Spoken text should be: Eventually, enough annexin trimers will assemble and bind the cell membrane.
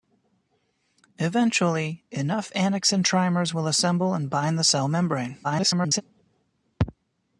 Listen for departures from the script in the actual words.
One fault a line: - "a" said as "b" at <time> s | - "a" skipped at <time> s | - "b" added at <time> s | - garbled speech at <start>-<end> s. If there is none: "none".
- garbled speech at 5.4-6.0 s